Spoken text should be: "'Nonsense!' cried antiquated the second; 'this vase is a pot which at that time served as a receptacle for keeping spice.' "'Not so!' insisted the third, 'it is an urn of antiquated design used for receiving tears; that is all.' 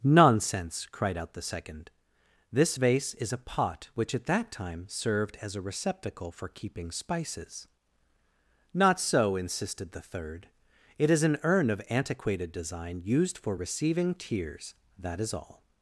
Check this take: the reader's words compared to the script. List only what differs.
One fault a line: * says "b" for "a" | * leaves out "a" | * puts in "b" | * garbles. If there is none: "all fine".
* says "out" for "antiquated"
* says "spices" for "spice"